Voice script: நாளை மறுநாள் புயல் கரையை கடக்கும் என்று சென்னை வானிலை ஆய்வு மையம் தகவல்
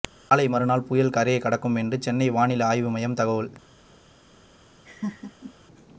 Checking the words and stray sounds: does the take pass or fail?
fail